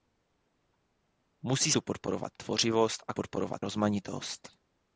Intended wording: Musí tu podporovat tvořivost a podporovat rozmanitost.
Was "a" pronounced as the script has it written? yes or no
yes